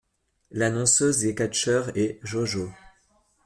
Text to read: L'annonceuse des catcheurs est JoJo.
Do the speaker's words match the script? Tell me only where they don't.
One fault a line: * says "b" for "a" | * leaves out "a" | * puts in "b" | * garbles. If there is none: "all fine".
all fine